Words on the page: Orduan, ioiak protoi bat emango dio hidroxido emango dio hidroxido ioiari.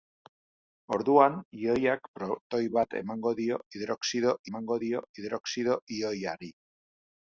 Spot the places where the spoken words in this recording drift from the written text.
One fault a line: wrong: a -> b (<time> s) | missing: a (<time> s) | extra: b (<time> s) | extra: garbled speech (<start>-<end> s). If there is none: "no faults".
no faults